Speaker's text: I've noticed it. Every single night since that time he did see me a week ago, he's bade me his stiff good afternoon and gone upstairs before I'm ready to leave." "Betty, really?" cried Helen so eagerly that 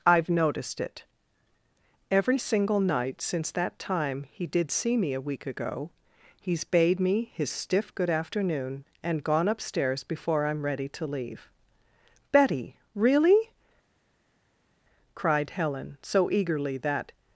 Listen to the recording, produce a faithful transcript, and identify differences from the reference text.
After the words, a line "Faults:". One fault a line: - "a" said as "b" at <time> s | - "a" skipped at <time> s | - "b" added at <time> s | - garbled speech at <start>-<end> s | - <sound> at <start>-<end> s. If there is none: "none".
I've noticed it. Every single night since that time he did see me a week ago, he's bade me his stiff good afternoon and gone upstairs before I'm ready to leave." "Betty, really?" cried Helen so eagerly that
Faults:
none